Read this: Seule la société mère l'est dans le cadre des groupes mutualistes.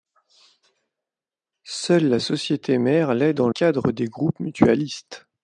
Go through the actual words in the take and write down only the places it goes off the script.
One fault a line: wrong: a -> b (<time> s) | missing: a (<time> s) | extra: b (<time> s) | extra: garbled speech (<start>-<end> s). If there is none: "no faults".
missing: le (3.5 s)